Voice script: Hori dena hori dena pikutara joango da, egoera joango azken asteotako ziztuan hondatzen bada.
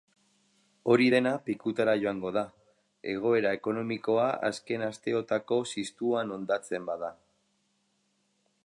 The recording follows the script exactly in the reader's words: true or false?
false